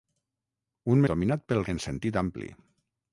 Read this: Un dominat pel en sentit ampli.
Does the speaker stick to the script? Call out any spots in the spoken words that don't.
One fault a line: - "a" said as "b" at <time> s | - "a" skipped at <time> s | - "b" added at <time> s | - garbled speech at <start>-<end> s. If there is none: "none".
none